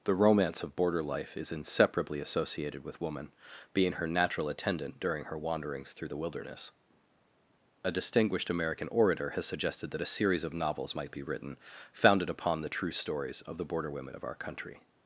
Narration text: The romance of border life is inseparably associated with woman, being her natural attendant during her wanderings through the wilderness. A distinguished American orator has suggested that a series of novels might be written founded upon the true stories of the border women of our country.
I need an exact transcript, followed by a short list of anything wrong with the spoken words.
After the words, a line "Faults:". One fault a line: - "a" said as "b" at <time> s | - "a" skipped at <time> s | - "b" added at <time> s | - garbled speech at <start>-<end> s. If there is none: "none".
The romance of border life is inseparably associated with woman, being her natural attendant during her wanderings through the wilderness. A distinguished American orator has suggested that a series of novels might be written founded upon the true stories of the border women of our country.
Faults:
none